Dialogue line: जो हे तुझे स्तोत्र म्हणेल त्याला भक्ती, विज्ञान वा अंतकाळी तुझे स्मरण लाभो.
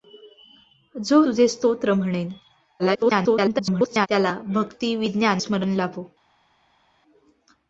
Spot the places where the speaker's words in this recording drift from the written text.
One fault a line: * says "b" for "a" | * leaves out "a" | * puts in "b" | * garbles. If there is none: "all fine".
* leaves out "हे"
* garbles
* leaves out "वा अंतकाळी तुझे"